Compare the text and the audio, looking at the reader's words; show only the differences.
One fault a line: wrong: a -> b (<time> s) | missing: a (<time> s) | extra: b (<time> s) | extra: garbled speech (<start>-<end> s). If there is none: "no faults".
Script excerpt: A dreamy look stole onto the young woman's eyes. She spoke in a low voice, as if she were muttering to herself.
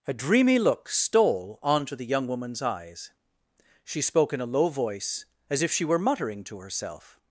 no faults